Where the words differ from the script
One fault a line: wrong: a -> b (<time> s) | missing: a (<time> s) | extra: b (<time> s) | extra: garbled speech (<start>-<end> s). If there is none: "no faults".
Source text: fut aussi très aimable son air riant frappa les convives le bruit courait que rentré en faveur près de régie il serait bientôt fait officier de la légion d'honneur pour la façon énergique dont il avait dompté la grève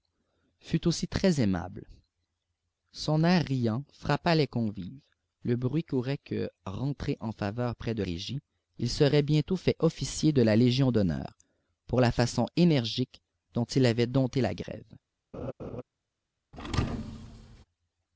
no faults